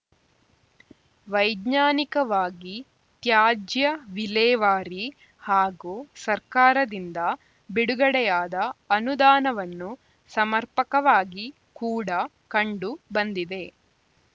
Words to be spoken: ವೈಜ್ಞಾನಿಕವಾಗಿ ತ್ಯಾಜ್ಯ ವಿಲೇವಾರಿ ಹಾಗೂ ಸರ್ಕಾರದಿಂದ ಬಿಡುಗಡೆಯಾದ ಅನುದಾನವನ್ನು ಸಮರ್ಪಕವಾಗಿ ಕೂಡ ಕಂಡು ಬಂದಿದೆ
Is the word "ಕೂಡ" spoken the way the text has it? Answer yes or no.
yes